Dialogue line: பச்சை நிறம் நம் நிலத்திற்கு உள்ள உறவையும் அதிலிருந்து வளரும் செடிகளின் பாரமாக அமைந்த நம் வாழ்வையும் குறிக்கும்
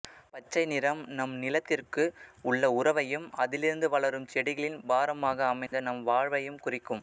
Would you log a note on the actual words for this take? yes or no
no